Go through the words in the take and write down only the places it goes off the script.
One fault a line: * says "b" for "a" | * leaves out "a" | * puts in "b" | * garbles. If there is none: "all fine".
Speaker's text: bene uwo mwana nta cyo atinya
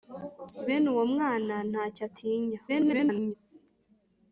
* garbles